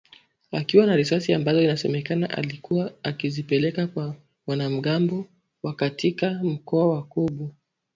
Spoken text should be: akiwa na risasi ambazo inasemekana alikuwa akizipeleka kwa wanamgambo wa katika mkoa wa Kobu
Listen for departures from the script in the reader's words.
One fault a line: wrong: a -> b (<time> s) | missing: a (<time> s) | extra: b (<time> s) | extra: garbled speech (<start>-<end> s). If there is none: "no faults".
no faults